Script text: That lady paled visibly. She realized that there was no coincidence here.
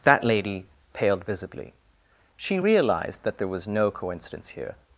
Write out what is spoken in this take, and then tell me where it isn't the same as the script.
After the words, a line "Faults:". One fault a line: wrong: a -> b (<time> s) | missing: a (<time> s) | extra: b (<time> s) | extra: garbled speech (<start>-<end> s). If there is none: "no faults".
That lady paled visibly. She realized that there was no coincidence here.
Faults:
no faults